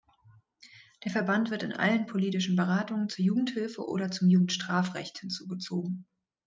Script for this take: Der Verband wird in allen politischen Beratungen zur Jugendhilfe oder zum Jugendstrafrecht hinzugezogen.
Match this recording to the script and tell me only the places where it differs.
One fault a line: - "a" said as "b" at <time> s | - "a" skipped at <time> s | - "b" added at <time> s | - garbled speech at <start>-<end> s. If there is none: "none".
none